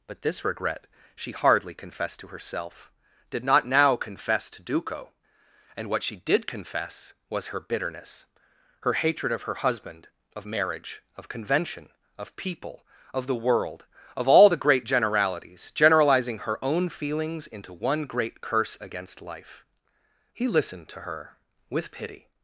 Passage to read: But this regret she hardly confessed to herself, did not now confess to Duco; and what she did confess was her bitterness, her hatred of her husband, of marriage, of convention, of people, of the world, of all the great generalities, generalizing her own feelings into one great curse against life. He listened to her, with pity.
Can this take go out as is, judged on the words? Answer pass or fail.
pass